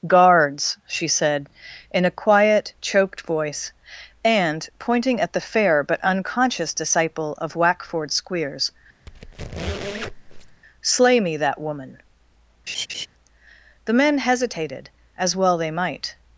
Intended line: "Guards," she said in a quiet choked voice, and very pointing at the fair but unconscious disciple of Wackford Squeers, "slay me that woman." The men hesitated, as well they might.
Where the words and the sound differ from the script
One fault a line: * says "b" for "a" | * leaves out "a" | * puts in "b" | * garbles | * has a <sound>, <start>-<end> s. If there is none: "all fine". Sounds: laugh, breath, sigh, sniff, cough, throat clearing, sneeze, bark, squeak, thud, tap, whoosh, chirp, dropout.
* leaves out "very"
* has a squeak, 9.1-10.6 s
* has a laugh, 12.7-13.1 s